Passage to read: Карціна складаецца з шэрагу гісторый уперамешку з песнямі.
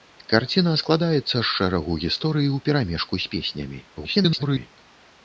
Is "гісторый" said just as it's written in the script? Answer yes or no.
yes